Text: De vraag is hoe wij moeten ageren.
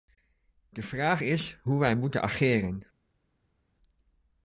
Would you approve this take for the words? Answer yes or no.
yes